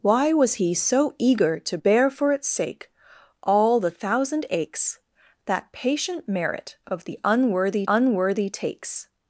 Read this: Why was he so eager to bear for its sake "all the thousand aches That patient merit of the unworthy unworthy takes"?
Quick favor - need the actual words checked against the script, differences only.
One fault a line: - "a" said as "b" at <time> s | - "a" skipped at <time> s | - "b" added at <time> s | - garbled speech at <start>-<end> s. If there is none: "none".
none